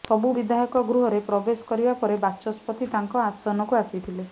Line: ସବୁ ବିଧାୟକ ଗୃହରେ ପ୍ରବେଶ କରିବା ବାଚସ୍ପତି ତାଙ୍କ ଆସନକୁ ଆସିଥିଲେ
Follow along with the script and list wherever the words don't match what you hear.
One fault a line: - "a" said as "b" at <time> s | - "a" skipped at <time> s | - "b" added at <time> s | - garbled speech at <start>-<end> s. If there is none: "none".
- "ପରେ" added at 2.0 s